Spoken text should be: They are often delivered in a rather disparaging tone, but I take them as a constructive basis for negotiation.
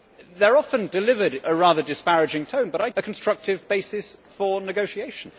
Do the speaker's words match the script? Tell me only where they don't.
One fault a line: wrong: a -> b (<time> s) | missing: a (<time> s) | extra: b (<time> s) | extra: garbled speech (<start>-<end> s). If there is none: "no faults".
missing: in (1.4 s)
missing: take them as (2.9 s)